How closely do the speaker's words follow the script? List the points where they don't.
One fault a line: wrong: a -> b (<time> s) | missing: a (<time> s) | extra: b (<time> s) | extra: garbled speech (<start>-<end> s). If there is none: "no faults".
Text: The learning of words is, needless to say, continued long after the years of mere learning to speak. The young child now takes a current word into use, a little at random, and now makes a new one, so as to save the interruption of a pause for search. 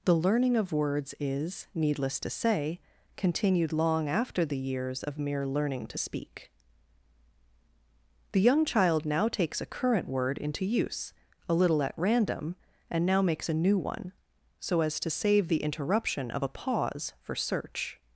no faults